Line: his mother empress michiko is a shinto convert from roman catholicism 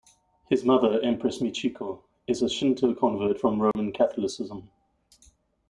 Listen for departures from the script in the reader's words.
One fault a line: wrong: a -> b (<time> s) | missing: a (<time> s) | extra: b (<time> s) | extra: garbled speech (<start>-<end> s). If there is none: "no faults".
no faults